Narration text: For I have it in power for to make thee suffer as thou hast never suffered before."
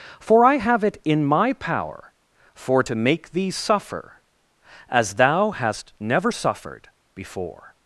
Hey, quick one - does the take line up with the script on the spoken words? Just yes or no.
no